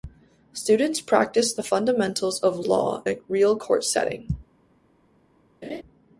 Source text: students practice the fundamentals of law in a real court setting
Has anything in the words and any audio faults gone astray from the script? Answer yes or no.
yes